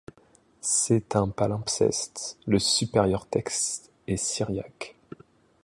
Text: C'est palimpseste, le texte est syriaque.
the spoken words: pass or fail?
fail